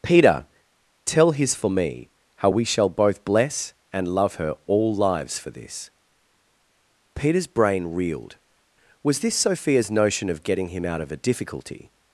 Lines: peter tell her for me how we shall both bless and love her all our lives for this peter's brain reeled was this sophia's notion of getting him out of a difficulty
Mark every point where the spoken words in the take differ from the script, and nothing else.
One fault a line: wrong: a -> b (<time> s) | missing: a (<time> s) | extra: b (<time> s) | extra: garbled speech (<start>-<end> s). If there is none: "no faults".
wrong: her -> his (1.3 s)
missing: our (4.9 s)